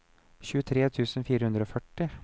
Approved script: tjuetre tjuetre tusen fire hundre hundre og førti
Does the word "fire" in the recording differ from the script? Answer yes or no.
no